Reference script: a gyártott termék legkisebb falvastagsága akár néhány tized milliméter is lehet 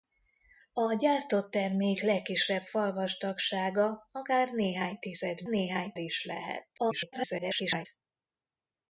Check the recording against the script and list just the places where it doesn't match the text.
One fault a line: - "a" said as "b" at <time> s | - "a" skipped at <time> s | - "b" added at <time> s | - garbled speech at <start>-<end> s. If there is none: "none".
- "milliméter" said as "néhány" at 5.5 s
- garbled speech at 6.8-7.9 s